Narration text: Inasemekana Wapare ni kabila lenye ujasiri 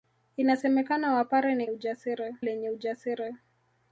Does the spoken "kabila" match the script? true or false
false